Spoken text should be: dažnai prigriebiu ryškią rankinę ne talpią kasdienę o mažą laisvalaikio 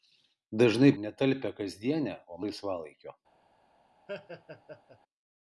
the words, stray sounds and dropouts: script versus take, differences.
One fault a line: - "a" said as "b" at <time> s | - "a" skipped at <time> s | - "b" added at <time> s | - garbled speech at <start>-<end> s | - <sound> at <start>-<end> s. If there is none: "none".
- "prigriebiu ryškią rankinę" skipped at 0.9 s
- "mažą" skipped at 2.4 s
- laugh at 4.1-5.0 s